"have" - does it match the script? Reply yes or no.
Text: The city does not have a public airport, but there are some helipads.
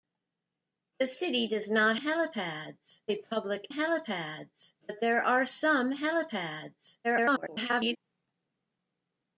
no